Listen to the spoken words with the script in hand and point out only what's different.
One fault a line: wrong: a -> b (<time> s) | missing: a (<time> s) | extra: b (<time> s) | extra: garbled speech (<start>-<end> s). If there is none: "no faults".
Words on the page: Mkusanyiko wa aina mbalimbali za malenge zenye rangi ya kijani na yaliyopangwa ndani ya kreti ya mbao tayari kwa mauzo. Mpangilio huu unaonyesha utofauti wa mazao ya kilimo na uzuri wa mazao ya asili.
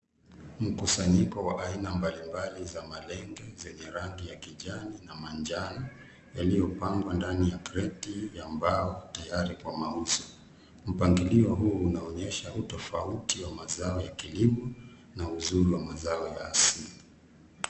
extra: manjano (5.2 s)